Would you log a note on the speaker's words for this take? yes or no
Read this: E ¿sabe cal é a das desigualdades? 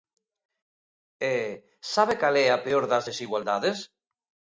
yes